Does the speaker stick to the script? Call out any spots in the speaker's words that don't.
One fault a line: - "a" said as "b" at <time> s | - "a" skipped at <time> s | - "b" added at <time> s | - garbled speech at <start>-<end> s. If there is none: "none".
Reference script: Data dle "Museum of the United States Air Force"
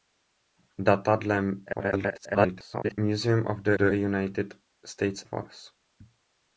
- garbled speech at 1.7-3.0 s
- "the" added at 3.8 s
- "Air" skipped at 5.2 s